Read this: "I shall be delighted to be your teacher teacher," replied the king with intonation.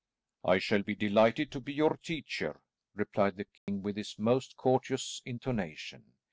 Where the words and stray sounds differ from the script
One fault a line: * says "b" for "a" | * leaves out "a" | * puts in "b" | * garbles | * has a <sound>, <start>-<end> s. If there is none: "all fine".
* leaves out "teacher"
* has a dropout, 3.6-3.7 s
* puts in "his most courteous"